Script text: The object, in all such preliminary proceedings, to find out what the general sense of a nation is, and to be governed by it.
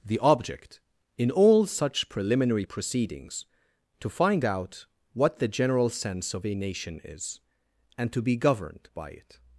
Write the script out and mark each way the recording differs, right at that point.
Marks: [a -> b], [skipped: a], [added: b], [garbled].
The object, in all such preliminary proceedings, to find out what the general sense of a nation is, and to be governed by it.